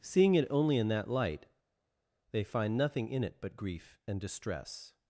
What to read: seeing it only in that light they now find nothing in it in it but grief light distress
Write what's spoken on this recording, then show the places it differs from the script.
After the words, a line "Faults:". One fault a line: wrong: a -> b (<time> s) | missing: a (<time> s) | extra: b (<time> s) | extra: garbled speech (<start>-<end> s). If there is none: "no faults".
seeing it only in that light they find nothing in it but grief and distress
Faults:
missing: now (2.5 s)
missing: in it (3.4 s)
wrong: light -> and (4.0 s)